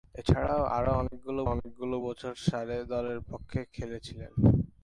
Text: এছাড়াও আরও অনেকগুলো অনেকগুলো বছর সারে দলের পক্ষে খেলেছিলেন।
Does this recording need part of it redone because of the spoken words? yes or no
no